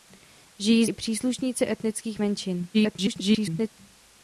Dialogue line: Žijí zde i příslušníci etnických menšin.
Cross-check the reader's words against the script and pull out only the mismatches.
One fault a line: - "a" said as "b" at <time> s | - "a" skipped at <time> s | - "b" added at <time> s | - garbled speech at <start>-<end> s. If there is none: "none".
- "zde" skipped at 0.8 s
- garbled speech at 2.7-3.7 s